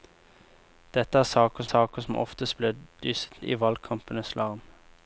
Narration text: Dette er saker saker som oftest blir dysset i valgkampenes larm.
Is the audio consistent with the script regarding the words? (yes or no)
yes